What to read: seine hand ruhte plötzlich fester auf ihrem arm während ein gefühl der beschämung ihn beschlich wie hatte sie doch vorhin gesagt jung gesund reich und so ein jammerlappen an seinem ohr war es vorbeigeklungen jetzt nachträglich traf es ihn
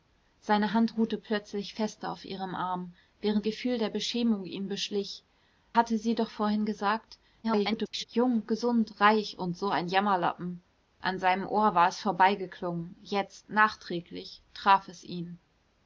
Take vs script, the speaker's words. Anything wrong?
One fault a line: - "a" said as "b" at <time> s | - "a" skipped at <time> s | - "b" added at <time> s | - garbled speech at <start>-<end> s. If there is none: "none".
- "ein" skipped at 3.5 s
- "wie" skipped at 5.2 s
- garbled speech at 7.4-8.1 s